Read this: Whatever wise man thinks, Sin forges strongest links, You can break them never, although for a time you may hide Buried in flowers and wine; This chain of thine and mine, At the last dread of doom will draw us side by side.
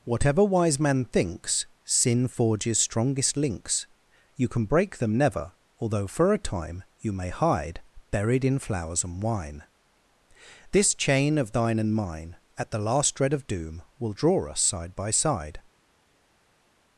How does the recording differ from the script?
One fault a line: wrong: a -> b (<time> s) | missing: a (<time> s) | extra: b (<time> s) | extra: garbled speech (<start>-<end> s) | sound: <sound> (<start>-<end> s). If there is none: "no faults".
no faults